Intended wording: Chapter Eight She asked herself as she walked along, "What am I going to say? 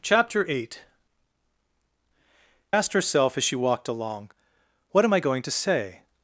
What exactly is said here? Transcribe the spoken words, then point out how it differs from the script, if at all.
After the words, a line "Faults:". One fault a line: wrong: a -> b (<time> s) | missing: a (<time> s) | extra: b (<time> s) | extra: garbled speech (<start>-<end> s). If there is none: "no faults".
Chapter Eight Asked herself as she walked along, "What am I going to say?
Faults:
missing: She (0.8 s)